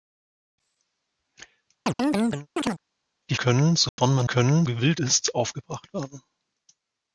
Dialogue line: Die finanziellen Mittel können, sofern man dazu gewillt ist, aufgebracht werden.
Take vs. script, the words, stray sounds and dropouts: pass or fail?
fail